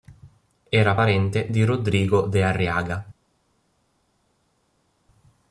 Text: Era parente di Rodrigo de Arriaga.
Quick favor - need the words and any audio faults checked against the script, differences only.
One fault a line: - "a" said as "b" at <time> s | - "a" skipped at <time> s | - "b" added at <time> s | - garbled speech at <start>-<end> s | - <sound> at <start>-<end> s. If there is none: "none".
none